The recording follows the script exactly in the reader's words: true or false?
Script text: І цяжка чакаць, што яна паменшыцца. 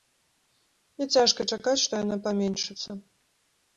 true